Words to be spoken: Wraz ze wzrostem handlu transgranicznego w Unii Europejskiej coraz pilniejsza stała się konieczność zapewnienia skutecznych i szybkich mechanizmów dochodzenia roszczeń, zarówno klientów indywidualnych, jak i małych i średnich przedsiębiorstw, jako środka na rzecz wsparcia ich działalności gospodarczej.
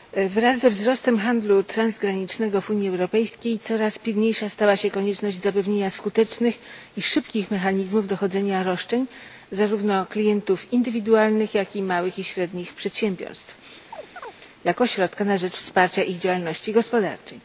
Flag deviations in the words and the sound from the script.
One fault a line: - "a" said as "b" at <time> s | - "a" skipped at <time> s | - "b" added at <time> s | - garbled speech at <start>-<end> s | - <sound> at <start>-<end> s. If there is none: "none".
- chirp at 13.9-14.4 s